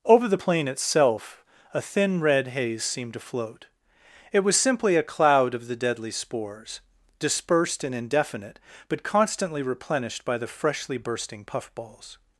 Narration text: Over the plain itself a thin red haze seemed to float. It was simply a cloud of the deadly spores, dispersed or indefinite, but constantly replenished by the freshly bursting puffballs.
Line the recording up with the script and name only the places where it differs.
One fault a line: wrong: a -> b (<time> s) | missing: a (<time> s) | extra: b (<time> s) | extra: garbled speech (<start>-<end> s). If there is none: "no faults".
wrong: or -> and (7.8 s)